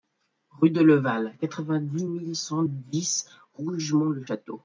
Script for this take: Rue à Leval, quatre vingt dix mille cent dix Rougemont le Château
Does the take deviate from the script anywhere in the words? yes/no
yes